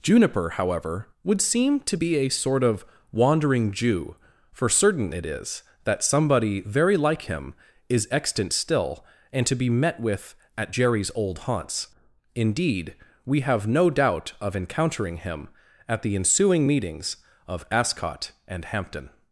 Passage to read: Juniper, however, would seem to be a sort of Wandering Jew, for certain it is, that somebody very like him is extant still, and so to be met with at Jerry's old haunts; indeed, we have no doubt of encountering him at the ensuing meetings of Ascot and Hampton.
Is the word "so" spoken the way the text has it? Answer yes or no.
no